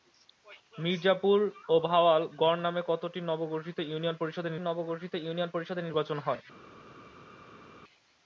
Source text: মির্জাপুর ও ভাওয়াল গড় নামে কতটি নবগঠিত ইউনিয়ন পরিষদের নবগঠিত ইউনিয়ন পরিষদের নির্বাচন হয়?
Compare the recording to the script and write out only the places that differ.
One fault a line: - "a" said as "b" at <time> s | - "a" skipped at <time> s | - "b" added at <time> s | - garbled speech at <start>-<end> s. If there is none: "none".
none